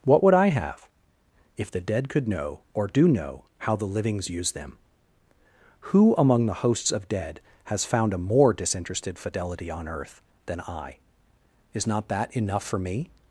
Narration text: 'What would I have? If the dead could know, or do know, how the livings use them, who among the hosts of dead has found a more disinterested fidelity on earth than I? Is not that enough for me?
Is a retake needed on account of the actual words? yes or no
no